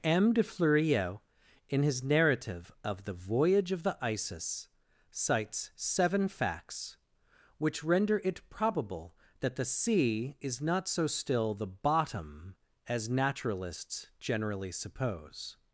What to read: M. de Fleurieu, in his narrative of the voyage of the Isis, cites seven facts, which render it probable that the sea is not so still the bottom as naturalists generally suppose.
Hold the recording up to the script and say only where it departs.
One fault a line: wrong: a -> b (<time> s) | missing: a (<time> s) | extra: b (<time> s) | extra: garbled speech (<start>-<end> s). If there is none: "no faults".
no faults